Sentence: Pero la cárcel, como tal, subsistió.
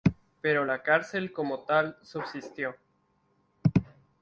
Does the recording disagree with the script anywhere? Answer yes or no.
no